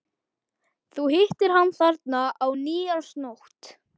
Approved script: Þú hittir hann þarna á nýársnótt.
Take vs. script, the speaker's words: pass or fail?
pass